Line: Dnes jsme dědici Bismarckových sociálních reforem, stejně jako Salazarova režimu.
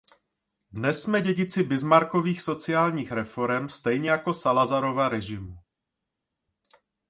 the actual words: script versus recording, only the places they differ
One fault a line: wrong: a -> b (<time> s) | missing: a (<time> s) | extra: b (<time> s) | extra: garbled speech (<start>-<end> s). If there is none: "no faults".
no faults